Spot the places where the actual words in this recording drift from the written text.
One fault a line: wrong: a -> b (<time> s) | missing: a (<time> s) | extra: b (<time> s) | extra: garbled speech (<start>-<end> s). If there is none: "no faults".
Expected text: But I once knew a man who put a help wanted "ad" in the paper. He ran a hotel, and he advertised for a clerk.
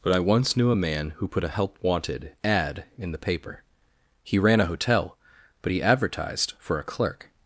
wrong: and -> but (5.6 s)